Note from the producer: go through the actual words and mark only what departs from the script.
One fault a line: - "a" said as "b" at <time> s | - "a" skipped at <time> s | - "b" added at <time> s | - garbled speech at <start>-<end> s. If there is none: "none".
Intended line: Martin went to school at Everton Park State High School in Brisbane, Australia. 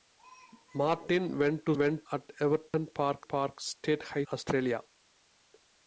- "school" said as "went" at 1.8 s
- "Park" added at 3.2 s
- "School in Brisbane" skipped at 4.2 s